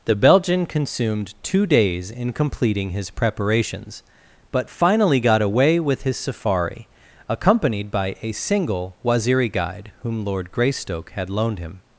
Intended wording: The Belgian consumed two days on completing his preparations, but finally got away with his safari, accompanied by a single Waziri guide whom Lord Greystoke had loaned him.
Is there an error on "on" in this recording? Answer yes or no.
yes